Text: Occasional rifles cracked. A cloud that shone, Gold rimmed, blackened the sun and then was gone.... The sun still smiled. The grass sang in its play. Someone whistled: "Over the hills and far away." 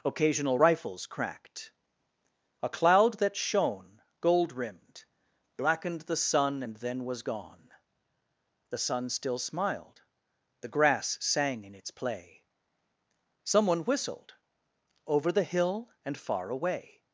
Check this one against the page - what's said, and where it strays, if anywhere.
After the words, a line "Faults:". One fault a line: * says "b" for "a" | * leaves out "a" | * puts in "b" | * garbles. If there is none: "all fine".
Occasional rifles cracked. A cloud that shone, Gold rimmed, blackened the sun and then was gone.... The sun still smiled. The grass sang in its play. Someone whistled: "Over the hill and far away."
Faults:
* says "hill" for "hills"